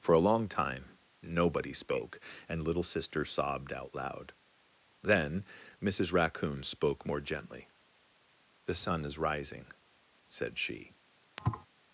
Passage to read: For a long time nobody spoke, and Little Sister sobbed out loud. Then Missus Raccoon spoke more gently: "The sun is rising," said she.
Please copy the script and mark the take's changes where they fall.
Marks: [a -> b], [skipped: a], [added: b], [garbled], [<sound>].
For a long time nobody spoke, and Little Sister sobbed out loud. Then Missus Raccoon spoke more gently: "The sun is rising," said she. [thud]